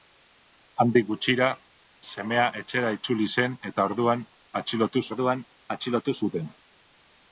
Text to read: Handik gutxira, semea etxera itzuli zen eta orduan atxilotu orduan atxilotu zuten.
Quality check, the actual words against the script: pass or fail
pass